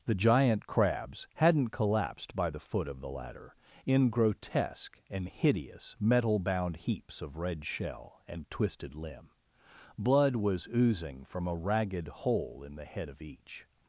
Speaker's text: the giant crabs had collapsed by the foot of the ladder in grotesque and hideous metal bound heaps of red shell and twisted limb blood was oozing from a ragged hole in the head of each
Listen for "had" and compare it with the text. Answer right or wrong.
wrong